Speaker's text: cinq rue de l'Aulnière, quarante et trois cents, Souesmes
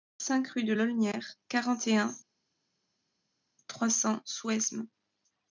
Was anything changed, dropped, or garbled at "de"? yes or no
no